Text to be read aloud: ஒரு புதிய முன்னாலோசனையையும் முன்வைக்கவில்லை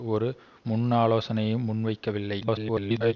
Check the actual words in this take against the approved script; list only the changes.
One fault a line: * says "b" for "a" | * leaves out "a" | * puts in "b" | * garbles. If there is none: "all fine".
* leaves out "புதிய"
* garbles